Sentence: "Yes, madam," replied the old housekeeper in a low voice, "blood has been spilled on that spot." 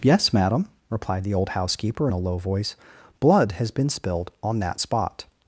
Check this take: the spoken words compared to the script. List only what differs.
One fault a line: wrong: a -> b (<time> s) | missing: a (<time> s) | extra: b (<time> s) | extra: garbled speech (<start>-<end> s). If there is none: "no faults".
no faults